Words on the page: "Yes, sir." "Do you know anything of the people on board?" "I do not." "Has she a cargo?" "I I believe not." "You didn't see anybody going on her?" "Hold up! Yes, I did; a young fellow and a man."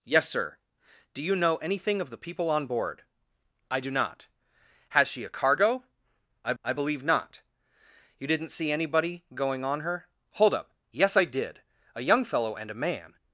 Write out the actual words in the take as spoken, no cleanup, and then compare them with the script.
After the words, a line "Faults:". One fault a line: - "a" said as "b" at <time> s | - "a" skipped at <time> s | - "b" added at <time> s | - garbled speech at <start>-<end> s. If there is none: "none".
"Yes, sir." "Do you know anything of the people on board?" "I do not." "Has she a cargo?" "I I believe not." "You didn't see anybody going on her?" "Hold up! Yes, I did; a young fellow and a man."
Faults:
none